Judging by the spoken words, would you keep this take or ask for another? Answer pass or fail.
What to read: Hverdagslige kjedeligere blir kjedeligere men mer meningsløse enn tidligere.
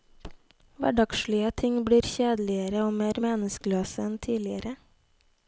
fail